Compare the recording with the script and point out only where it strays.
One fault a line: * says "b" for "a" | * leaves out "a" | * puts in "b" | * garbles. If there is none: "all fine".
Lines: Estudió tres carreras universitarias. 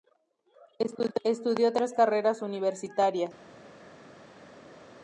all fine